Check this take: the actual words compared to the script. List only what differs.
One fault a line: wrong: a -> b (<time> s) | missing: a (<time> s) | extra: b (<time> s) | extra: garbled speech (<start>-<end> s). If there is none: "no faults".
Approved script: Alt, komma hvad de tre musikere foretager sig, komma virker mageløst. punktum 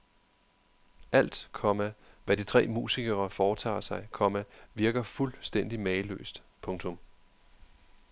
extra: fuldstændig (5.0 s)